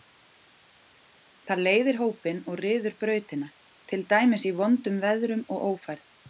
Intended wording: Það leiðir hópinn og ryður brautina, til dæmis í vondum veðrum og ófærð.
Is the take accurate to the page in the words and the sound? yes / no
yes